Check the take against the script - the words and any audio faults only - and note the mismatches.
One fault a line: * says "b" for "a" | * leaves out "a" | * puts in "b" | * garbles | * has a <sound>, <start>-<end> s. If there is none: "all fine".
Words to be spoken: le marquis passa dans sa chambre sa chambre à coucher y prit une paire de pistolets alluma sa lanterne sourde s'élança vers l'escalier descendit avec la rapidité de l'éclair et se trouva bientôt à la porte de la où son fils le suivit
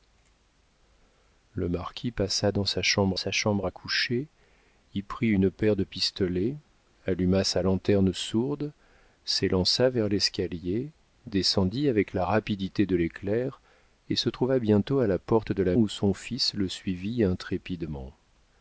all fine